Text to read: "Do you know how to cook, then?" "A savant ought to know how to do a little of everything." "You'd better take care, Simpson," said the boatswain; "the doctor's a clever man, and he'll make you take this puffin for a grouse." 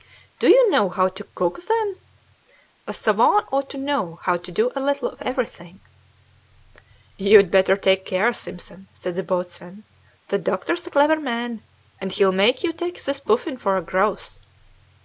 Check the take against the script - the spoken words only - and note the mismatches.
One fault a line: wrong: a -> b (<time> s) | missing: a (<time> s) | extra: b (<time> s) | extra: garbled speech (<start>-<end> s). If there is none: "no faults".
no faults